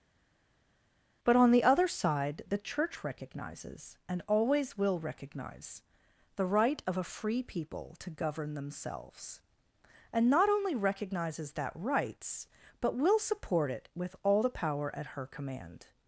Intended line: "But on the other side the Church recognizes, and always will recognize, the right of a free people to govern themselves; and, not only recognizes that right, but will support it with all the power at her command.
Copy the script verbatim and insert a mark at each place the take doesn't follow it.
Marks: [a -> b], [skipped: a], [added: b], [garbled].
"But on the other side the Church recognizes, and always will recognize, the right of a free people to govern themselves; and, not only recognizes that [right, -> rights] but will support it with all the power at her command.